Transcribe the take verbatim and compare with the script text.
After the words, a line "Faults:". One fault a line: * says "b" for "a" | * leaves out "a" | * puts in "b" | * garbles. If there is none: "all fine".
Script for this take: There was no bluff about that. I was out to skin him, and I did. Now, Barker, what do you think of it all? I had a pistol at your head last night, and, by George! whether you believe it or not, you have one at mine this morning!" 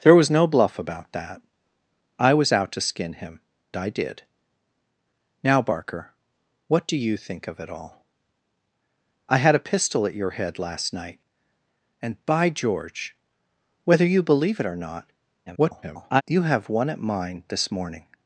There was no bluff about that. I was out to skin him, I did. Now, Barker, what do you think of it all? I had a pistol at your head last night, and, by George! whether you believe it or not, [garbled] you have one at mine this morning!"
Faults:
* leaves out "and"
* garbles